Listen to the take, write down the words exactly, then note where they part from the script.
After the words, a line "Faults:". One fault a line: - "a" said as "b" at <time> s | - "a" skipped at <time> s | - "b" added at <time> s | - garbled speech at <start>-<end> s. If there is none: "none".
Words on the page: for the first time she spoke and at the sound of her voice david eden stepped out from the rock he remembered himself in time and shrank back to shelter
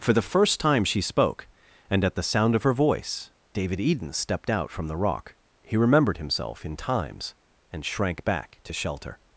for the first time she spoke and at the sound of her voice david eden stepped out from the rock he remembered himself in times and shrank back to shelter
Faults:
- "time" said as "times" at 6.8 s